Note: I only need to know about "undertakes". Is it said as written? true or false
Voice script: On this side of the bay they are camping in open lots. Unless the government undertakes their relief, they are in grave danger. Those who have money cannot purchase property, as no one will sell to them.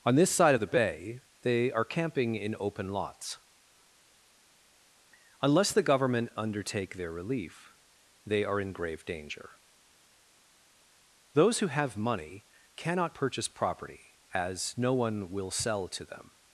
false